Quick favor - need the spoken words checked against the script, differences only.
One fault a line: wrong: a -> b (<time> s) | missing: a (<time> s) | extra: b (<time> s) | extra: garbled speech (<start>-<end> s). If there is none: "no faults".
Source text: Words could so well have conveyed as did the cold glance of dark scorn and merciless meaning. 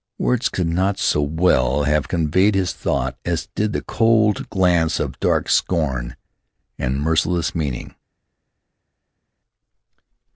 extra: not (0.7 s)
extra: his thought (2.5 s)